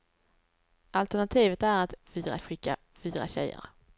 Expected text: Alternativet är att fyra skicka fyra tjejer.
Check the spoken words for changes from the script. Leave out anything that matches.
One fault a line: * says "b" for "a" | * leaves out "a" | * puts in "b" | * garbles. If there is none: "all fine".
all fine